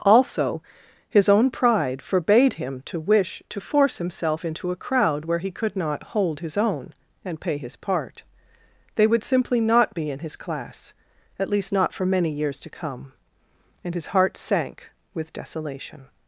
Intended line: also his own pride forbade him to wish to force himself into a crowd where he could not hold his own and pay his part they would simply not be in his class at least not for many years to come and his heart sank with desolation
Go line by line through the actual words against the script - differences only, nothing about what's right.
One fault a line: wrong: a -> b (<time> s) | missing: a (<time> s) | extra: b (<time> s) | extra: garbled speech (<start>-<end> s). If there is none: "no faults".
no faults